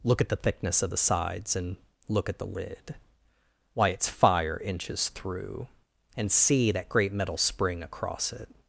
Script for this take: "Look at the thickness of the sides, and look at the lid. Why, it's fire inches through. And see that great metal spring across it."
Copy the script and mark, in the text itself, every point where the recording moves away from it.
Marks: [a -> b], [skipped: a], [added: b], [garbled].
"Look at the thickness of the sides, and look at the lid. Why, it's fire inches through. And see that great metal spring across it."